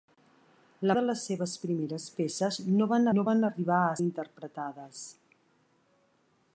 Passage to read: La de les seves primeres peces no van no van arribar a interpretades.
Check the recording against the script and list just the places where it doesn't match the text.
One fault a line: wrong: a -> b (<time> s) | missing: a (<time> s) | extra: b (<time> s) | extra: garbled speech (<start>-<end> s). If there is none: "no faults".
no faults